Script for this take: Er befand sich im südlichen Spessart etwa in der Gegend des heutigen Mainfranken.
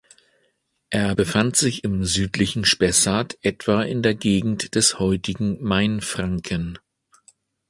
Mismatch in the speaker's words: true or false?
false